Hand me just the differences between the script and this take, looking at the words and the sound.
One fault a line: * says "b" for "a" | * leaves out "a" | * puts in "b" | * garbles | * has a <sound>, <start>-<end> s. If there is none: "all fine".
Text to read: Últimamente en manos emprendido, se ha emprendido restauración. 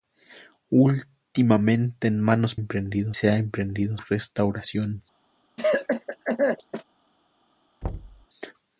* has a cough, 5.6-6.8 s
* has a thud, 7.8-8.3 s